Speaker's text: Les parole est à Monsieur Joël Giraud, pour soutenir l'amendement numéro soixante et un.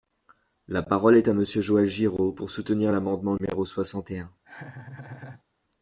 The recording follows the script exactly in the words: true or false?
false